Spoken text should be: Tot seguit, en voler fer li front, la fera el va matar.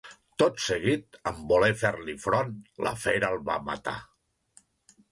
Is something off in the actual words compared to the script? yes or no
no